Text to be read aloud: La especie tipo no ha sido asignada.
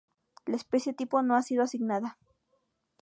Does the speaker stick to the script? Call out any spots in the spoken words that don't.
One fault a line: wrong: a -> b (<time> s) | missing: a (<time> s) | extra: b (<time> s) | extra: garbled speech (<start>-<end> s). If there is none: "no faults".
no faults